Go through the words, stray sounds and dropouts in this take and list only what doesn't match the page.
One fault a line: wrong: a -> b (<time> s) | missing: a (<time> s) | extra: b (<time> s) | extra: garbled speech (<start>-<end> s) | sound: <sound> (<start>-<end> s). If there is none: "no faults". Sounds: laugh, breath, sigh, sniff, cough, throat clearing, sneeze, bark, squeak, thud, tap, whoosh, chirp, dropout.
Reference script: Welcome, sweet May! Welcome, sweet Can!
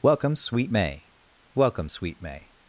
wrong: Can -> May (2.2 s)